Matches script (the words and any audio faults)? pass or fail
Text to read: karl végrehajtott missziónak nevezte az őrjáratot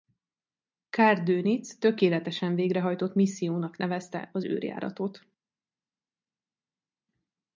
fail